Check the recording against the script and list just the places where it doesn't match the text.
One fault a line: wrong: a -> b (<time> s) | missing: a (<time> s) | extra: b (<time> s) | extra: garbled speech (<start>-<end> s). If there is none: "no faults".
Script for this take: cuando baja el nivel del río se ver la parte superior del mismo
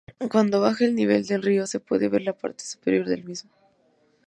extra: puede (1.8 s)